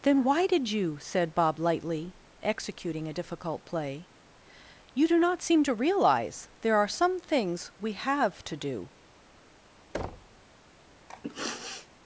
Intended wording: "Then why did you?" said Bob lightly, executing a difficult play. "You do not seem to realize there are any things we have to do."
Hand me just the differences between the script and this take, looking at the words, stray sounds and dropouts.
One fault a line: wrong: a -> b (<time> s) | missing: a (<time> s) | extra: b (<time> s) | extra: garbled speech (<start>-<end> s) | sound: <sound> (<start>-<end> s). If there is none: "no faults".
wrong: any -> some (6.9 s)
sound: thud (9.9-10.4 s)
sound: sniff (11.1-11.9 s)